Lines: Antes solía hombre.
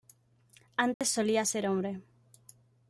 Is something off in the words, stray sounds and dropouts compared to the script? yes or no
yes